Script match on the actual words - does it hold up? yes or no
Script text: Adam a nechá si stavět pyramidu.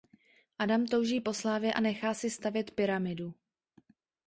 no